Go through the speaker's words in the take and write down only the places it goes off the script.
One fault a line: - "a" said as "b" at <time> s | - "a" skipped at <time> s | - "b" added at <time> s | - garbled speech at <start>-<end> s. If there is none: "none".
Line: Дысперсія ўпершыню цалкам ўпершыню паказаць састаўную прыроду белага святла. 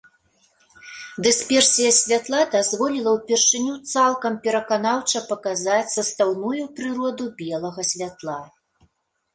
- "святла дазволіла" added at 2.0 s
- "ўпершыню" said as "пераканаўча" at 4.5 s